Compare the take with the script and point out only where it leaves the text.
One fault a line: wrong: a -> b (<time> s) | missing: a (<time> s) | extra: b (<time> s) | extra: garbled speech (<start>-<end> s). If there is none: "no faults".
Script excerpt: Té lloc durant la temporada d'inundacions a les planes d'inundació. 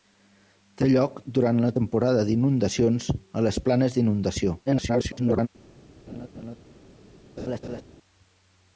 extra: garbled speech (4.7-5.5 s)